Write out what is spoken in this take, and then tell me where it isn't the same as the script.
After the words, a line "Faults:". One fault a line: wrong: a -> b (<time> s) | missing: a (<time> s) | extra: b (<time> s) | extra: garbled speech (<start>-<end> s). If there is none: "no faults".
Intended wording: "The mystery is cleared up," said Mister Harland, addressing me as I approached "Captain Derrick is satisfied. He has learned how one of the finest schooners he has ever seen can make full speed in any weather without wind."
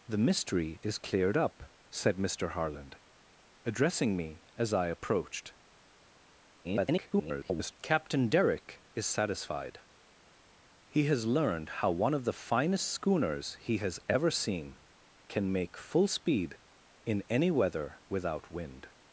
"The mystery is cleared up," said Mister Harland, addressing me as I approached [garbled] "Captain Derrick is satisfied. He has learned how one of the finest schooners he has ever seen can make full speed in any weather without wind."
Faults:
extra: garbled speech (6.6-7.7 s)